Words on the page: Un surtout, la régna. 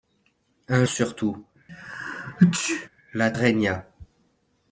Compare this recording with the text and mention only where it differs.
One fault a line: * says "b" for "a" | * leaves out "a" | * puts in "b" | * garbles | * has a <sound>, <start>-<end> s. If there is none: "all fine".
* has a sneeze, 1.7-2.9 s